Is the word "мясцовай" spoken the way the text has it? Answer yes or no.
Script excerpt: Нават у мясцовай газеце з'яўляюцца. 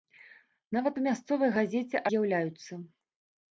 yes